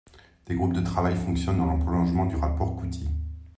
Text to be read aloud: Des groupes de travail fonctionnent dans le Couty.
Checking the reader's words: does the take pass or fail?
fail